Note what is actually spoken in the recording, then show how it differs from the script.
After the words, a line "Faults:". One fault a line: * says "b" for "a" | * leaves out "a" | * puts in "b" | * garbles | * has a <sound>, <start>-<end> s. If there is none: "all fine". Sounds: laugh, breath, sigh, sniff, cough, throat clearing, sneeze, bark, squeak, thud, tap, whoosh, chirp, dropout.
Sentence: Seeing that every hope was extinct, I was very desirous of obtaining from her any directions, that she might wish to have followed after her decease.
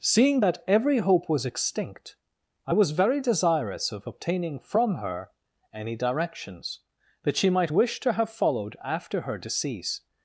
Seeing that every hope was extinct, I was very desirous of obtaining from her any directions, that she might wish to have followed after her decease.
Faults:
all fine